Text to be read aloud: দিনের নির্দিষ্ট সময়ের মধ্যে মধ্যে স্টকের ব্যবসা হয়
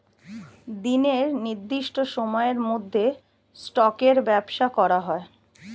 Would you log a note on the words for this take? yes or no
yes